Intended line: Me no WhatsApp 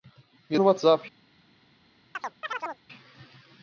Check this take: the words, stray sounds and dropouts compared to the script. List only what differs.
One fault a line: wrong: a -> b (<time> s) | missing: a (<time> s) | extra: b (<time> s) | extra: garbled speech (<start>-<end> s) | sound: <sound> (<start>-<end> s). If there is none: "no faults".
sound: chirp (2.1-2.8 s)